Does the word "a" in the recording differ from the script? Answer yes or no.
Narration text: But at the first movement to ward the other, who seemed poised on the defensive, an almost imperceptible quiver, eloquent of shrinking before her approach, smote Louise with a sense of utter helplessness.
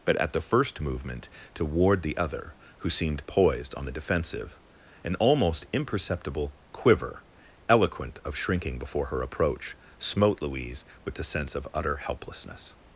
yes